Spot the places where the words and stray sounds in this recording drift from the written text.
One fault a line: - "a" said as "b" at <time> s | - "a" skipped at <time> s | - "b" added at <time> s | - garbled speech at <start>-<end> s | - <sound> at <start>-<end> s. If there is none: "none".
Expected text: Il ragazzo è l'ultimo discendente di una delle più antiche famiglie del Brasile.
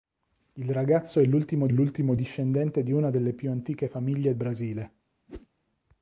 - "l'ultimo" added at 1.7 s
- "del" skipped at 4.3 s
- whoosh at 5.3-5.5 s